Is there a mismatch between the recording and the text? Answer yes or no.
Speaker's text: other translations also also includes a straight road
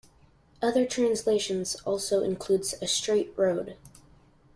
yes